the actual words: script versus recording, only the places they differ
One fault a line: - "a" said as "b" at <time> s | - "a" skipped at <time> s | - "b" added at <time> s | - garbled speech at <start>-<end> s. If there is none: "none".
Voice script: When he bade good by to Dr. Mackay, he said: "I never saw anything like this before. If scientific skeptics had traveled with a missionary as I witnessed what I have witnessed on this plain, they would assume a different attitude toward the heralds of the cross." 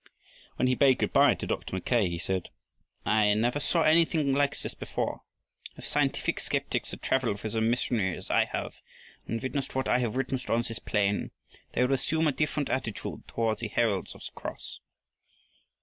- "have and" added at 8.4 s